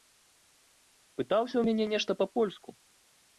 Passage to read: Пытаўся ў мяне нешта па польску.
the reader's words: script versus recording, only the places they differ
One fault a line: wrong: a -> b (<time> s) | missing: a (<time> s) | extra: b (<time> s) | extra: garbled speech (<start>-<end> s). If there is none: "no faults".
no faults